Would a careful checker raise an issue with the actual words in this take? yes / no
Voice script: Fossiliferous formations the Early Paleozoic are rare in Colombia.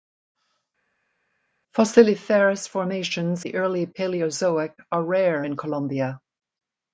no